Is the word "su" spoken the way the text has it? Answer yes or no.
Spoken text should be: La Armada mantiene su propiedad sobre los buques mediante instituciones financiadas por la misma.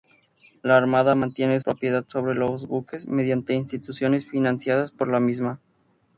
no